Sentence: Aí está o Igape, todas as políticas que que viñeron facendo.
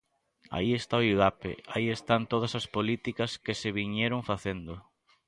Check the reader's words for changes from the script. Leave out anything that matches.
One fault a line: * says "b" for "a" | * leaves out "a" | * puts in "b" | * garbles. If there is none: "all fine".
* puts in "aí están"
* says "se" for "que"